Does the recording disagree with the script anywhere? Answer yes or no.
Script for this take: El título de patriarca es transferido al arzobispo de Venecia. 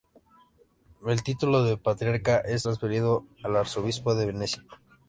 no